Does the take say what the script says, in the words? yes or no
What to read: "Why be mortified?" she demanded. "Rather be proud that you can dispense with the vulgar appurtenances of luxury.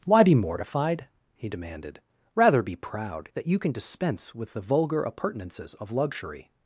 no